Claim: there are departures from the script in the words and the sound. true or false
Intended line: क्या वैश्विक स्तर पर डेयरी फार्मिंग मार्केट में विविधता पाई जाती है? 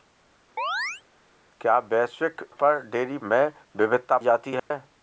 true